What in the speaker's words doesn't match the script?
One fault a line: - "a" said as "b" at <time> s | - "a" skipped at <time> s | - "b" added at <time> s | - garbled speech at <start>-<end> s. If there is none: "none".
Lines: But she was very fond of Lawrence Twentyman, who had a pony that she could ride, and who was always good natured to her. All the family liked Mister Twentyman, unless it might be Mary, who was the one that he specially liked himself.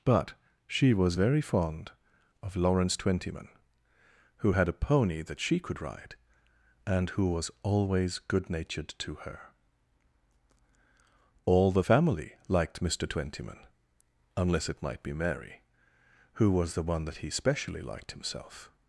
none